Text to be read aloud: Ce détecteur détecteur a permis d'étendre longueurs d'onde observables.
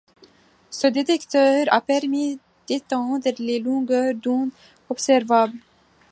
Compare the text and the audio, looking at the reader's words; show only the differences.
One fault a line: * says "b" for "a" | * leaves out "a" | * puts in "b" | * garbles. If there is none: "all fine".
* leaves out "détecteur"
* puts in "les"